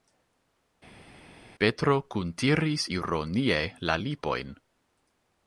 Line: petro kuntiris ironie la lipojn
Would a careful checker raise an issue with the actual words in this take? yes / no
no